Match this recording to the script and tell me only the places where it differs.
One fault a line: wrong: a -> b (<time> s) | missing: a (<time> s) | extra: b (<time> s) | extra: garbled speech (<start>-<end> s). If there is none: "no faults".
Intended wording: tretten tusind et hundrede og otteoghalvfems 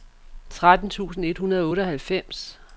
no faults